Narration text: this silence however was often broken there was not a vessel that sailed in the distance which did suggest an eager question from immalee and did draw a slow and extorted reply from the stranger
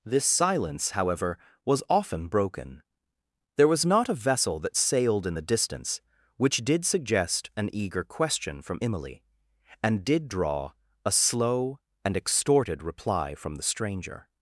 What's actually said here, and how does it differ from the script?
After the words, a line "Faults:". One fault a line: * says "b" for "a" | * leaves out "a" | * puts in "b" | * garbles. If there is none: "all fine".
this silence however was often broken there was not a vessel that sailed in the distance which did suggest an eager question from immalee and did draw a slow and extorted reply from the stranger
Faults:
all fine